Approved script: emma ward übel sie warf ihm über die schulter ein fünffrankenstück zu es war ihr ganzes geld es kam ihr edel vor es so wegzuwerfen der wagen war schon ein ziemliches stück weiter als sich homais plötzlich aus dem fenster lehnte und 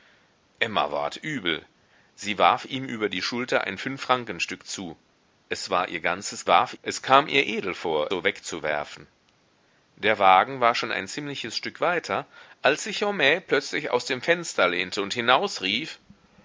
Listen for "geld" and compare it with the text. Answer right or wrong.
wrong